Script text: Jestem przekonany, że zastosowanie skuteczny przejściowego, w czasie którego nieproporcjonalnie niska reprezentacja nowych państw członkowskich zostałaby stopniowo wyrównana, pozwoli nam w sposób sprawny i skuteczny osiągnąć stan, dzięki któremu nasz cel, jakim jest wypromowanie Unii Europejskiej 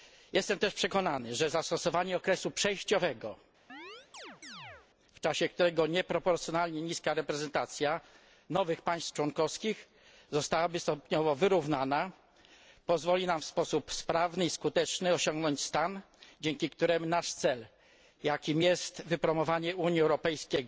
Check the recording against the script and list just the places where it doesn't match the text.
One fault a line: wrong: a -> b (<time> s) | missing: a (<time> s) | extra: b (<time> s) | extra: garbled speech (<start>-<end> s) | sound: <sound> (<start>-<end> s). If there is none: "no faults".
extra: też (0.6 s)
wrong: skuteczny -> okresu (2.2 s)
sound: chirp (3.7-4.9 s)